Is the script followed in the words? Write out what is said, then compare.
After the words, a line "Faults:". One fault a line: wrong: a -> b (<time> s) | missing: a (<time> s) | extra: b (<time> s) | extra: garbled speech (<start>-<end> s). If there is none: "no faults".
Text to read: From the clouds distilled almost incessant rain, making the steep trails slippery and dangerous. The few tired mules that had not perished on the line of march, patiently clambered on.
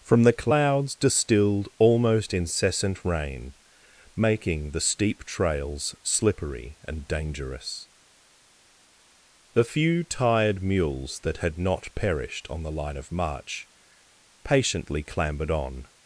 From the clouds distilled almost incessant rain, making the steep trails slippery and dangerous. The few tired mules that had not perished on the line of march, patiently clambered on.
Faults:
no faults